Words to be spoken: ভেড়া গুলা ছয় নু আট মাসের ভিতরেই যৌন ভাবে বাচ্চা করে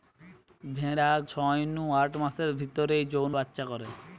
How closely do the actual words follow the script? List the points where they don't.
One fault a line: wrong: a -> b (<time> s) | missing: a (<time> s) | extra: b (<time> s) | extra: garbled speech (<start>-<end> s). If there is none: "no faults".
missing: গুলা (1.1 s)
missing: ভাবে (3.3 s)